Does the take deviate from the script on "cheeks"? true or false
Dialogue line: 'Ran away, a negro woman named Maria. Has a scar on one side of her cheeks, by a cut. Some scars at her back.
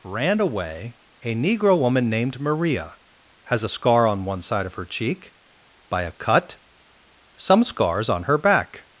true